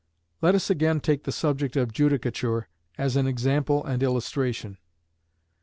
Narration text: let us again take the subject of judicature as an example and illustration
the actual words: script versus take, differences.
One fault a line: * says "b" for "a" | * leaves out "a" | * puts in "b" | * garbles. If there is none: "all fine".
all fine